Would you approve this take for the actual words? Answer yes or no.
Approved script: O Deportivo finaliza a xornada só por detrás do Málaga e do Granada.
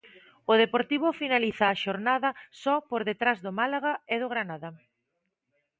yes